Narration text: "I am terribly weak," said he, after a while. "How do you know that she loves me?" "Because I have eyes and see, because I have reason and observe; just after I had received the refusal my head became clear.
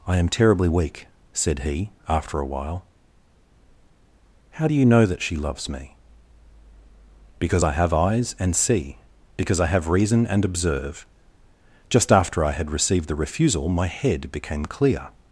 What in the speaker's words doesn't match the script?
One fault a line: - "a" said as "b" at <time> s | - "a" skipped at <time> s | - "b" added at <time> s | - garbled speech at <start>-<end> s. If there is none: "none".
none